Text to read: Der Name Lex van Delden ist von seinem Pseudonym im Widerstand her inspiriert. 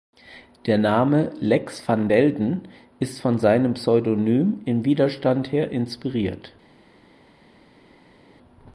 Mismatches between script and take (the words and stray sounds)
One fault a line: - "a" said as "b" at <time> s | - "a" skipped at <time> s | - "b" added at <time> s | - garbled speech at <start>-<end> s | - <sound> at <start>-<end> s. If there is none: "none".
none